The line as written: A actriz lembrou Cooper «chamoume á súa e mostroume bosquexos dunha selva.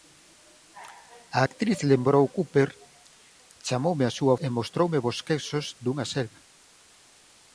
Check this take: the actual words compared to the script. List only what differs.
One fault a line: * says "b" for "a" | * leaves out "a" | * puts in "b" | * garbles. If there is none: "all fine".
all fine